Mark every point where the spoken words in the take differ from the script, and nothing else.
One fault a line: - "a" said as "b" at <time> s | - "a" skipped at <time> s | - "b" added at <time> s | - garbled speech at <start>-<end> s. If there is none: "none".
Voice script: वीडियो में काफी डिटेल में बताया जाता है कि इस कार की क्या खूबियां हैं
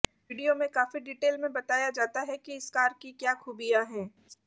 none